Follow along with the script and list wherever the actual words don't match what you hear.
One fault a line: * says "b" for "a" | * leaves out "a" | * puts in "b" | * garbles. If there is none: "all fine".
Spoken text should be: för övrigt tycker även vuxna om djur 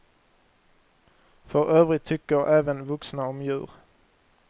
all fine